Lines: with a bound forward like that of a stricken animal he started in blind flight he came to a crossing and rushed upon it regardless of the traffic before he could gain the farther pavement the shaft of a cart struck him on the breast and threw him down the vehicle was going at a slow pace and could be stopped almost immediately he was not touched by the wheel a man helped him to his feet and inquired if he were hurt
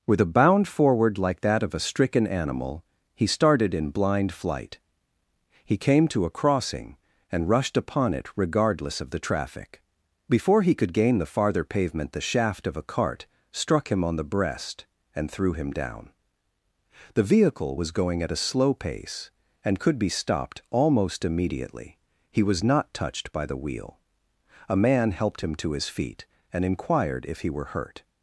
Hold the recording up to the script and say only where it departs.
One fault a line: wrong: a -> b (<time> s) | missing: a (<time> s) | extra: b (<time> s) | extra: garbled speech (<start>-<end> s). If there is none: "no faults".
no faults